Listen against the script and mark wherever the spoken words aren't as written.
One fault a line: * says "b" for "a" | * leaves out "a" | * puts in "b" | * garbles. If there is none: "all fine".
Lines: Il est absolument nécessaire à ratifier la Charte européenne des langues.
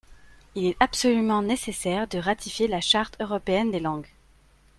* says "de" for "à"